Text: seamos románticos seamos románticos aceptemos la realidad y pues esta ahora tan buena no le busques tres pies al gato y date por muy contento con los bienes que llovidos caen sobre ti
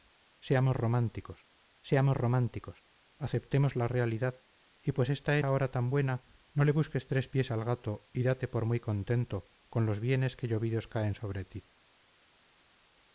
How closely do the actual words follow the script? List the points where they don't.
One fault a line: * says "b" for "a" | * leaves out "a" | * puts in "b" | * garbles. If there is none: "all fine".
all fine